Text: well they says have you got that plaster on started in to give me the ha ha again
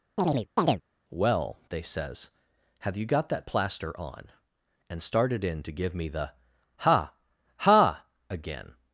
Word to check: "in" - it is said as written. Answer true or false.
true